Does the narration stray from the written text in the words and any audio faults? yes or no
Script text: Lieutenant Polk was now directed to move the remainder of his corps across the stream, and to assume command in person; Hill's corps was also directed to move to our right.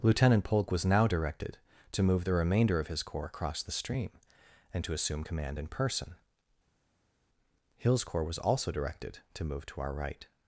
no